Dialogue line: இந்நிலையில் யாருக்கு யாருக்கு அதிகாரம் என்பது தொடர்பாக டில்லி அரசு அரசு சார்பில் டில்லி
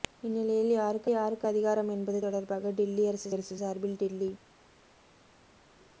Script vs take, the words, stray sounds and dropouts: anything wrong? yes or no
no